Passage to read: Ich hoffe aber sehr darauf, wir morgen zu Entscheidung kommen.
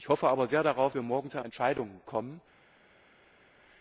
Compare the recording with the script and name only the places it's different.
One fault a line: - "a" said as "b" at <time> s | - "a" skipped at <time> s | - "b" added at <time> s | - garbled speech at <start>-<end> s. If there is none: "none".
none